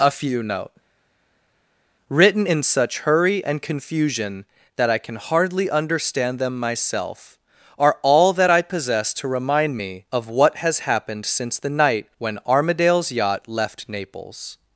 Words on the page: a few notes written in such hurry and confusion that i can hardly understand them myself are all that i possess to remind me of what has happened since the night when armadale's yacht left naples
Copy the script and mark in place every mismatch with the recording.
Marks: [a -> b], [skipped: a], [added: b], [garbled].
a few [notes -> note] written in such hurry and confusion that i can hardly understand them myself are all that i possess to remind me of what has happened since the night when armadale's yacht left naples